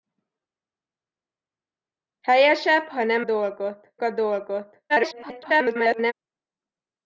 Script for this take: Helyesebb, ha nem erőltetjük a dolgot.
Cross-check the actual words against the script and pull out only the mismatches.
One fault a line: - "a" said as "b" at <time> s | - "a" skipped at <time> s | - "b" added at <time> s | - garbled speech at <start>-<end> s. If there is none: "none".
- "erőltetjük" said as "dolgot" at 3.2 s
- garbled speech at 4.9-6.1 s